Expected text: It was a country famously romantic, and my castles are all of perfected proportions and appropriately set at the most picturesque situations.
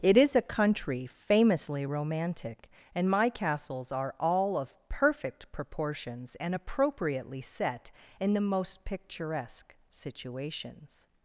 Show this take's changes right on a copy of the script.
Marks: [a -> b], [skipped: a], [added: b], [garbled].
It [was -> is] a country famously romantic, and my castles are all of [perfected -> perfect] proportions and appropriately set [at -> in] the most picturesque situations.